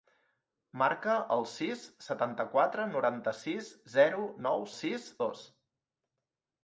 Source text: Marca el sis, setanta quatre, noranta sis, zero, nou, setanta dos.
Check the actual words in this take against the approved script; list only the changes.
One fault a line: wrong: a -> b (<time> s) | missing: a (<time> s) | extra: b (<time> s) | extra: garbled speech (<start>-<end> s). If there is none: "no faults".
wrong: setanta -> sis (4.7 s)